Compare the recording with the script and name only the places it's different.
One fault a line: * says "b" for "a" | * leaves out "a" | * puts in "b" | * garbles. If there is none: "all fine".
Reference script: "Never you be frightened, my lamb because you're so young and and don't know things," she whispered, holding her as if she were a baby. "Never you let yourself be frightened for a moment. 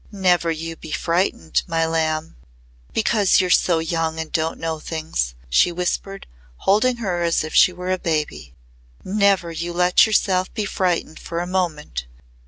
* leaves out "and"